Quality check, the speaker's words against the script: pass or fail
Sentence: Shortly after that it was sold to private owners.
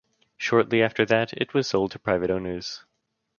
pass